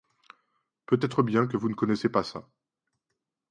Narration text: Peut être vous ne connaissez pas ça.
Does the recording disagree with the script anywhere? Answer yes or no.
yes